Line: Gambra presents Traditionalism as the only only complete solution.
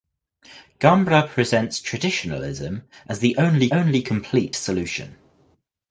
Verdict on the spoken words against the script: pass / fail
pass